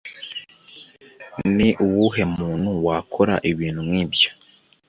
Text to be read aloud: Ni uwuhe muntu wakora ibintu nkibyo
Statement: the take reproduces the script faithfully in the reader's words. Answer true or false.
true